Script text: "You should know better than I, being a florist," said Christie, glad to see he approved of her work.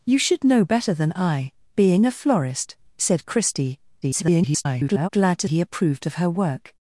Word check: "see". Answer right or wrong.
wrong